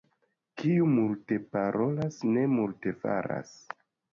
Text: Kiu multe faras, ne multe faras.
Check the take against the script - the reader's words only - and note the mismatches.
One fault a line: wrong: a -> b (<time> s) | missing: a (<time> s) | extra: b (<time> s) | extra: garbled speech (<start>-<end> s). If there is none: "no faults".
wrong: faras -> parolas (1.6 s)